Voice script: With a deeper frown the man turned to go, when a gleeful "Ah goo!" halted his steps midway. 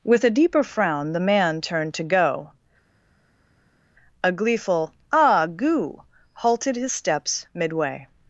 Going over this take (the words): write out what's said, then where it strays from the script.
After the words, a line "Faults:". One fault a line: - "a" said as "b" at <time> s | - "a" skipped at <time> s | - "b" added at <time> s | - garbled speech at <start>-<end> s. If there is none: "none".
With a deeper frown the man turned to go, a gleeful "Ah goo!" halted his steps midway.
Faults:
- "when" skipped at 2.5 s